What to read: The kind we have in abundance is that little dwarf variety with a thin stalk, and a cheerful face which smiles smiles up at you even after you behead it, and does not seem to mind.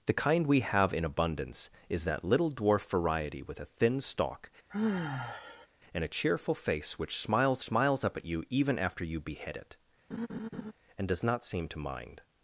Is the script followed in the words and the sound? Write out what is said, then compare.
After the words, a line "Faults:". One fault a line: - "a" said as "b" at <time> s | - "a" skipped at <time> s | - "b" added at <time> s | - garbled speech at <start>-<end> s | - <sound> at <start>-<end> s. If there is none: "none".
The kind we have in abundance is that little dwarf variety with a thin stalk, and a cheerful face which smiles smiles up at you even after you behead it, and does not seem to mind.
Faults:
- sigh at 4.7-5.7 s
- laugh at 10.1-10.7 s